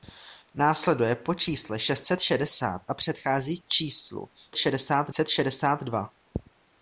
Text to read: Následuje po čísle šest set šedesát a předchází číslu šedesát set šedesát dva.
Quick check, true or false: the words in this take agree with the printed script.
true